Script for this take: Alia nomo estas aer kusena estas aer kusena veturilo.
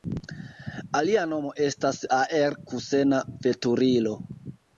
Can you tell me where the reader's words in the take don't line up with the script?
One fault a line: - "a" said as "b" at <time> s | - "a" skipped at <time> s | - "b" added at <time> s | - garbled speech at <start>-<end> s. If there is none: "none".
- "estas aer kusena" skipped at 3.2 s